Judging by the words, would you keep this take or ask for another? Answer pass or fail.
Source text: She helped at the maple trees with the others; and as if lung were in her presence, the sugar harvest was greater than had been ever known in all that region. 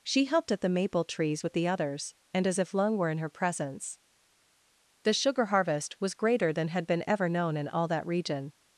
pass